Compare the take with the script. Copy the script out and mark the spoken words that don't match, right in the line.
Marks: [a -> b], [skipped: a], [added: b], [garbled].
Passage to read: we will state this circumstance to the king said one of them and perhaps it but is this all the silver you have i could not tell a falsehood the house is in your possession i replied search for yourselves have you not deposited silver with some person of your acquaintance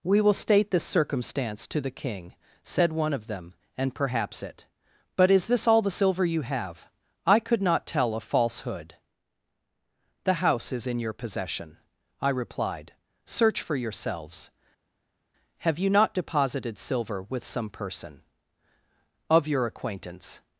we will state this circumstance to the king said one of them and perhaps it but is this all the silver you have i could not tell a falsehood the house is in your possession i replied search for yourselves have you not deposited silver with some person of your acquaintance